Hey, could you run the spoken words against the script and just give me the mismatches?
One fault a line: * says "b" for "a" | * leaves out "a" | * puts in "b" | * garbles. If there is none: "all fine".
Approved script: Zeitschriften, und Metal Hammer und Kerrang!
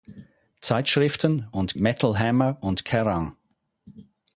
all fine